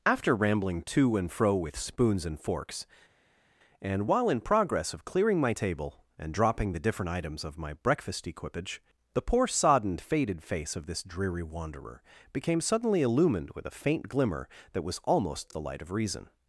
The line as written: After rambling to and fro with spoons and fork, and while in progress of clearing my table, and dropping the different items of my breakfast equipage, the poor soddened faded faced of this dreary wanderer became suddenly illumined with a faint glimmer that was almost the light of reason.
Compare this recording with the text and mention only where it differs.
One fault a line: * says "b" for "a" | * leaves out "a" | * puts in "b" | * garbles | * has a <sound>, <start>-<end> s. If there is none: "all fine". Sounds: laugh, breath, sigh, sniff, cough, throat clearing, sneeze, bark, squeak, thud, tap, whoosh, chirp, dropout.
* says "forks" for "fork"
* says "face" for "faced"